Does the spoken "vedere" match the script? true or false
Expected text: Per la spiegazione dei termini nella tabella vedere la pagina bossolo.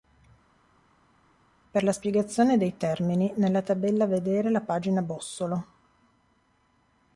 true